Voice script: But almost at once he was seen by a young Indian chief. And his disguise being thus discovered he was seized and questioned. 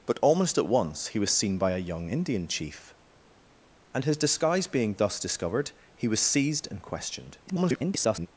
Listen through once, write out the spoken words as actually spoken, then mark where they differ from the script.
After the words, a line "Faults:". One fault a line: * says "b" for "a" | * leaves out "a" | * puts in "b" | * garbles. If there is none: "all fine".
But almost at once he was seen by a young Indian chief. And his disguise being thus discovered he was seized and questioned. [garbled]
Faults:
* garbles